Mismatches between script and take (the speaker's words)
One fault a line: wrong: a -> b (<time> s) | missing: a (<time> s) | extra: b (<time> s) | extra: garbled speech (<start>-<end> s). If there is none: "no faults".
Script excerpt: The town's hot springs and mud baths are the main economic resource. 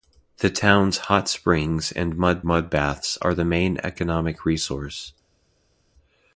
extra: mud (2.4 s)